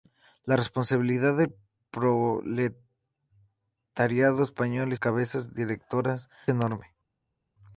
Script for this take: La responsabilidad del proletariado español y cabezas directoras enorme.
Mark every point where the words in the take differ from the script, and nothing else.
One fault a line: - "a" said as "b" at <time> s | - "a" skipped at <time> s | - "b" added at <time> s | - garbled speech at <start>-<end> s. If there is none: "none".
none